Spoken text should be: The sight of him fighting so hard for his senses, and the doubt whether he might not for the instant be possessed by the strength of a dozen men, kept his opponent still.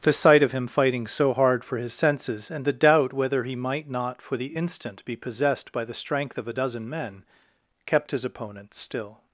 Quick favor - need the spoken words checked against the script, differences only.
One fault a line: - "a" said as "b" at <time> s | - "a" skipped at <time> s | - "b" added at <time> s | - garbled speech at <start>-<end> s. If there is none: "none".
none